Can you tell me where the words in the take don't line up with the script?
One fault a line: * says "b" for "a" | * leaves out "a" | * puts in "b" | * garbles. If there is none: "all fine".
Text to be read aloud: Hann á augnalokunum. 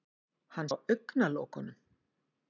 all fine